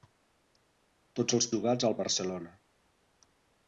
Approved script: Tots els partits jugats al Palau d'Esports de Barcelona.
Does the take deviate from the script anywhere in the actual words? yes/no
yes